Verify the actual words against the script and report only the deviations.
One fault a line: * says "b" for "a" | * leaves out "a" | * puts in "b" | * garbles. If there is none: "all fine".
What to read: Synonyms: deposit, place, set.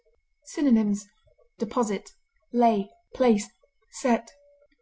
* puts in "lay"